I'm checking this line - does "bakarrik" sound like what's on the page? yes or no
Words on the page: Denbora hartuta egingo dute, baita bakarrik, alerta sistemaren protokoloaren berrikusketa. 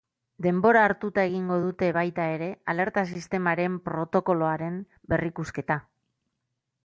no